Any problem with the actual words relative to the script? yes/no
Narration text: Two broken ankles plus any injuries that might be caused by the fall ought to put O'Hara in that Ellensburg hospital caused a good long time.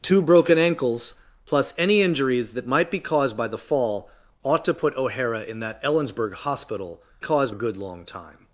no